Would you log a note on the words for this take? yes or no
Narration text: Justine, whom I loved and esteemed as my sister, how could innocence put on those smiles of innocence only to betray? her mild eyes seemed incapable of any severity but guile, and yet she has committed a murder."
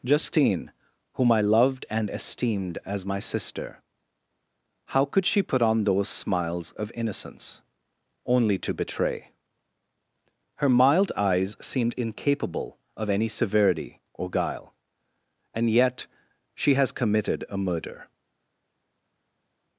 yes